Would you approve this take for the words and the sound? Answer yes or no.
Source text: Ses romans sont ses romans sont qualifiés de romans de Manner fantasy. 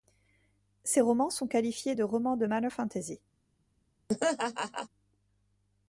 no